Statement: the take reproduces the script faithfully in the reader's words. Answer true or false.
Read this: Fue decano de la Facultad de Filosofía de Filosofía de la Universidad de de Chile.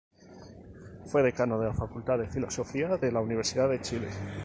false